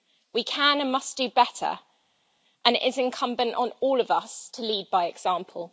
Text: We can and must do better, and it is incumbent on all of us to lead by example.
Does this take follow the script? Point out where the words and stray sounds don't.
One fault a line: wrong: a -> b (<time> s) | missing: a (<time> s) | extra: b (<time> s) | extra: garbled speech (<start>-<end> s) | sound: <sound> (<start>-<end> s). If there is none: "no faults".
no faults